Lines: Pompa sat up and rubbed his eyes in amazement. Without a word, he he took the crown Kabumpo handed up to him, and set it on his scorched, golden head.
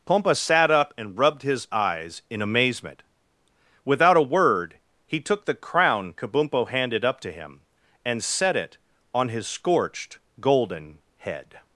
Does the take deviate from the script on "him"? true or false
false